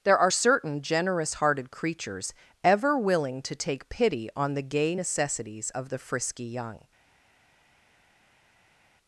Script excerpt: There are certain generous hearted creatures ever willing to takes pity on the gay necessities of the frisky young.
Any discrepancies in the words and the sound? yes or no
yes